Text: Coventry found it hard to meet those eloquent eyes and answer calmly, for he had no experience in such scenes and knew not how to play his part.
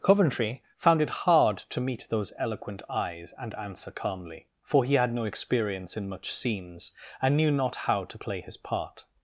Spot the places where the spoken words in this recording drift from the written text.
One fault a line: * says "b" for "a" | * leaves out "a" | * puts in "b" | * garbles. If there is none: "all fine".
* says "much" for "such"